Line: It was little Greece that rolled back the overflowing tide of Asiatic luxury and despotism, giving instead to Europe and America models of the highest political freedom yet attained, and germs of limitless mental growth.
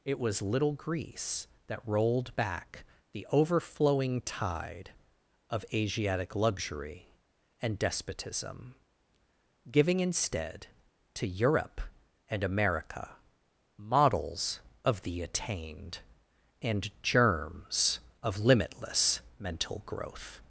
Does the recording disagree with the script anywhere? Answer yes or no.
yes